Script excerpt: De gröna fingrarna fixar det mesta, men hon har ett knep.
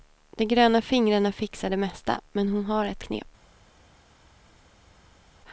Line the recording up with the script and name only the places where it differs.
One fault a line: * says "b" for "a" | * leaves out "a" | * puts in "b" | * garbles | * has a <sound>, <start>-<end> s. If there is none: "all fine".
all fine